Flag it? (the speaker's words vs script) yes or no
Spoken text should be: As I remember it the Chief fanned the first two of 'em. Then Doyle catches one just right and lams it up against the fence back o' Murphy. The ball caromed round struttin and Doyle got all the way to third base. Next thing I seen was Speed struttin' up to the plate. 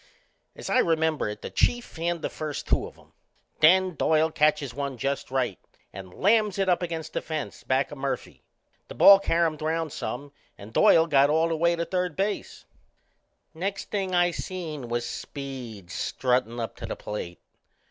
yes